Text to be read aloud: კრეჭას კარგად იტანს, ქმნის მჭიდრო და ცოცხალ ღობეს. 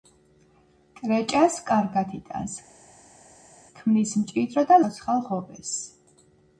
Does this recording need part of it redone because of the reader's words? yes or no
no